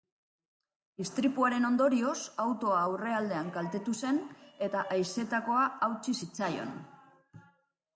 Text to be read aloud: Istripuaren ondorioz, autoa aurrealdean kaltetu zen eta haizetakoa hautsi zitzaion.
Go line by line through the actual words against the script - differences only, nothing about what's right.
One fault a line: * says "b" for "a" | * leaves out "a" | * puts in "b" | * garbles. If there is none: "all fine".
all fine